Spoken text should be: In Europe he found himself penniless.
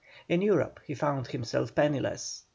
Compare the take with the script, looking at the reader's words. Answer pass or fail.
pass